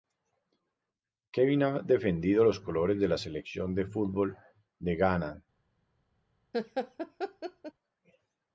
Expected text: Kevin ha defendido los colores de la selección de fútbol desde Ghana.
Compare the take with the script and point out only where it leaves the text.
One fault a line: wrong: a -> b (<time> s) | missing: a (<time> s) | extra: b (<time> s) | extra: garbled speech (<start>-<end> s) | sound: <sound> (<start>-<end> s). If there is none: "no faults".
wrong: desde -> de (4.8 s)
sound: laugh (6.5-7.7 s)